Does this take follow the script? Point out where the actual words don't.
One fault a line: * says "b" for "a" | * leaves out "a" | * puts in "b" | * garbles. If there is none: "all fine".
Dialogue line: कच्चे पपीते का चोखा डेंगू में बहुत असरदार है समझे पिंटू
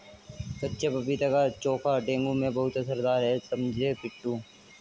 all fine